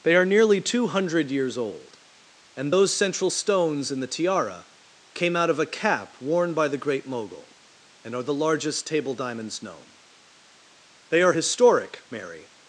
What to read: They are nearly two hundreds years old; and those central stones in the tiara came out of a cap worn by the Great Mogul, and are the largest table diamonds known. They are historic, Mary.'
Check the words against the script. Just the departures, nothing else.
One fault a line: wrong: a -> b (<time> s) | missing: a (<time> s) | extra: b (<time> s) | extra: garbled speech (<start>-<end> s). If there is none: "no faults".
wrong: hundreds -> hundred (0.9 s)